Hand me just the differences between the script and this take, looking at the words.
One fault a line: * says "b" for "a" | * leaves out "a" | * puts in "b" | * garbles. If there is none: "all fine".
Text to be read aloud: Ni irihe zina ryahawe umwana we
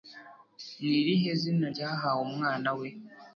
all fine